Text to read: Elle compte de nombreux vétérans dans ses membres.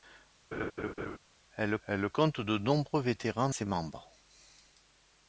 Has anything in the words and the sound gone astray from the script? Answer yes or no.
yes